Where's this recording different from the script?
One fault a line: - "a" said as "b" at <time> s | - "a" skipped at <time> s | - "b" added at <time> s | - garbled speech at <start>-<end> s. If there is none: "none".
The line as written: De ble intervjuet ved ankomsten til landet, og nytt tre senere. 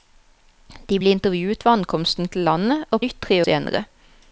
none